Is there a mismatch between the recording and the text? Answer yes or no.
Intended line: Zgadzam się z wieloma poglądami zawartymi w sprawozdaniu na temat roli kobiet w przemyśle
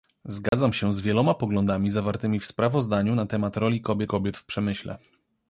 yes